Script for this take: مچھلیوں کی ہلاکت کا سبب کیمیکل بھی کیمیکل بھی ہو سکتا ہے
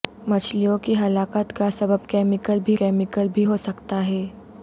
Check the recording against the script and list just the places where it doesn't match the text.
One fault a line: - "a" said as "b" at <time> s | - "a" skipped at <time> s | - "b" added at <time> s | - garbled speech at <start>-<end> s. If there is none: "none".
none